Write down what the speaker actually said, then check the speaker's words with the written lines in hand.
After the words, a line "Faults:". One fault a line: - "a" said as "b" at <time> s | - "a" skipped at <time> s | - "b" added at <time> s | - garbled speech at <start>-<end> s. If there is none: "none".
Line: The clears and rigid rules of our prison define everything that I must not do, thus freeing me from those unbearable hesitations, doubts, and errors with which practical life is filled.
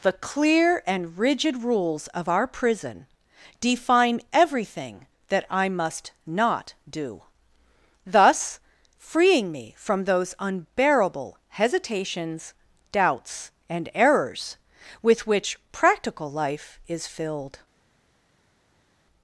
The clear and rigid rules of our prison define everything that I must not do, thus freeing me from those unbearable hesitations, doubts, and errors with which practical life is filled.
Faults:
- "clears" said as "clear" at 0.1 s